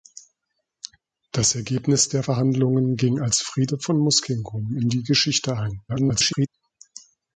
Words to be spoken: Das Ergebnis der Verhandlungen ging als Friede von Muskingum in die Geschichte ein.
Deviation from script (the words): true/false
true